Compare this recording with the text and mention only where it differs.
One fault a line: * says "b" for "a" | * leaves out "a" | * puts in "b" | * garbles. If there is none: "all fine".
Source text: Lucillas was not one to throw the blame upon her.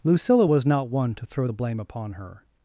* says "Lucilla" for "Lucillas"